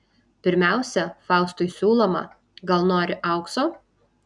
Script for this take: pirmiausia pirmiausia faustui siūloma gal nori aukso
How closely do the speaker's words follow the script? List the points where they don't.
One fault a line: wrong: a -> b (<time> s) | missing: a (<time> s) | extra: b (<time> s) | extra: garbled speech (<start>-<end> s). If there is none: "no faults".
missing: pirmiausia (1.0 s)